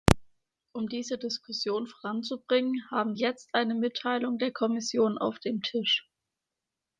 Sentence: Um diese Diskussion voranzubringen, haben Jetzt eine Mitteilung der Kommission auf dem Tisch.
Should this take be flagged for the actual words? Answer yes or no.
no